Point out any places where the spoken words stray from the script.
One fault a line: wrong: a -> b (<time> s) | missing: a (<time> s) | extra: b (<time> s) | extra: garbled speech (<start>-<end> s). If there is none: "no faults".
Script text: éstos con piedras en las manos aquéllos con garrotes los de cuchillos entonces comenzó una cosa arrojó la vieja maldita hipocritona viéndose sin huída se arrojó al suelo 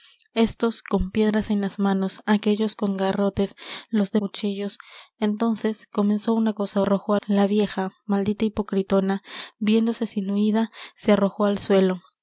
no faults